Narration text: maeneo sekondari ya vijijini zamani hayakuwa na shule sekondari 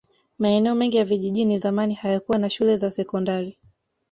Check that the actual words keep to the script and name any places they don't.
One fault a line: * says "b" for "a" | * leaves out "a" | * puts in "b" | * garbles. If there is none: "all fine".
* says "mengi" for "sekondari"
* puts in "za"